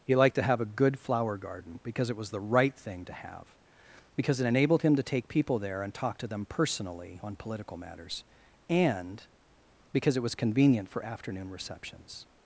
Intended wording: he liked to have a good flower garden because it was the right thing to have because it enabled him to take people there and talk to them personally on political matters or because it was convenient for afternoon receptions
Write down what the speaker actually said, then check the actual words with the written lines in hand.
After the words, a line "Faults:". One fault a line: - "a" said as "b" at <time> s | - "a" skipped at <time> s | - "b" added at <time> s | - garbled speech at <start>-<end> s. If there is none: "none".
he liked to have a good flower garden because it was the right thing to have because it enabled him to take people there and talk to them personally on political matters and because it was convenient for afternoon receptions
Faults:
- "or" said as "and" at 8.7 s